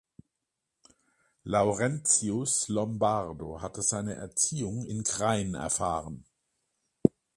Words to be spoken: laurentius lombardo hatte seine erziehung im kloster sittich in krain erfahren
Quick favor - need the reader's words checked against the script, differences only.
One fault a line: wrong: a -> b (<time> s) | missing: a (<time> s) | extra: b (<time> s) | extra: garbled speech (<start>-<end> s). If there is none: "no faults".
missing: im kloster sittich (4.8 s)